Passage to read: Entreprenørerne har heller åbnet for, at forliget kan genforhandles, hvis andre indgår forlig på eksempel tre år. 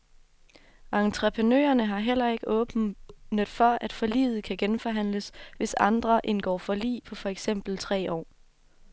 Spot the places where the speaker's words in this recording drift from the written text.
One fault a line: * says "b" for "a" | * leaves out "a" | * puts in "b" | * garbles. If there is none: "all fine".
* puts in "ikke"
* puts in "for"